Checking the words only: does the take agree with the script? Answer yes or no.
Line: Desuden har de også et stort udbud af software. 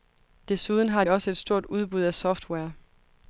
no